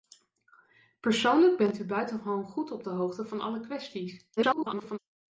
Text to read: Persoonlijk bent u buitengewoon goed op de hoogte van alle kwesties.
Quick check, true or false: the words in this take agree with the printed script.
false